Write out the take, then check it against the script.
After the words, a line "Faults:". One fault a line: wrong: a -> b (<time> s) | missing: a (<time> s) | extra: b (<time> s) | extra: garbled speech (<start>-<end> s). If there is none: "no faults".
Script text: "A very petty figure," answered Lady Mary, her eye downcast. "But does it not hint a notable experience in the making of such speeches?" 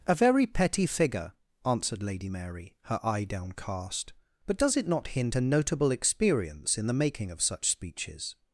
"A very petty figure," answered Lady Mary, her eye downcast. "But does it not hint a notable experience in the making of such speeches?"
Faults:
no faults